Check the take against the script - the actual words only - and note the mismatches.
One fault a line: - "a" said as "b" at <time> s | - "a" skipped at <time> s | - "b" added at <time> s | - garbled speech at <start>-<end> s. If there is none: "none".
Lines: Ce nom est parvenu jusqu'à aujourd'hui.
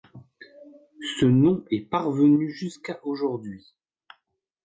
none